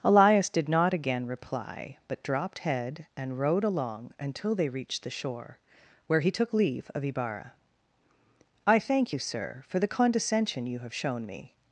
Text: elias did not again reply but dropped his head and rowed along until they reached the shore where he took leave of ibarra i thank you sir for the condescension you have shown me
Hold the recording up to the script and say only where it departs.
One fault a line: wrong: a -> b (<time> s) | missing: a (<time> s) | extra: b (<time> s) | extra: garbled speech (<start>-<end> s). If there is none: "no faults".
missing: his (2.6 s)